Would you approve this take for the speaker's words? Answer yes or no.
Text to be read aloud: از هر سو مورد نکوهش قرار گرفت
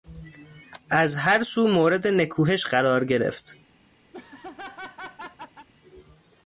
yes